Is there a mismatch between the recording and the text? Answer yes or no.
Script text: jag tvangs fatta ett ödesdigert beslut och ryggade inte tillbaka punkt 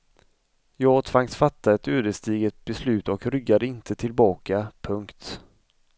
no